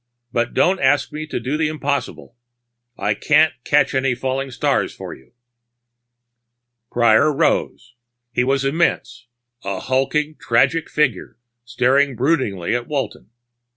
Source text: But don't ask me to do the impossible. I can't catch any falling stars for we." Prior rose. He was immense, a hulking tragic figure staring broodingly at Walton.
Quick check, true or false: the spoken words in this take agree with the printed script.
false